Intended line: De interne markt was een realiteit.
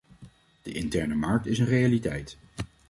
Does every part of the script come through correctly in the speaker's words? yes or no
no